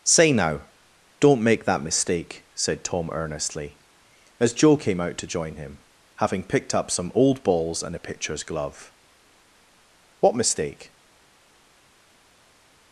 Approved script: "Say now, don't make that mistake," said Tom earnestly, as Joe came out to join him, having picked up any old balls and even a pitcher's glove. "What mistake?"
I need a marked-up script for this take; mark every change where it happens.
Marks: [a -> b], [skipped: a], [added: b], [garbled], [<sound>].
"Say now, don't make that mistake," said Tom earnestly, as Joe came out to join him, having picked up [any -> some] old balls and [skipped: even] a pitcher's glove. "What mistake?"